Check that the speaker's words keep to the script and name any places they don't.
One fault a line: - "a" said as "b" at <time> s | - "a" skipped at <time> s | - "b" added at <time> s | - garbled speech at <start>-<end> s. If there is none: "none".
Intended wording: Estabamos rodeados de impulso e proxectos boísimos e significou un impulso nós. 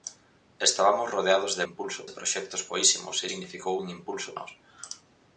none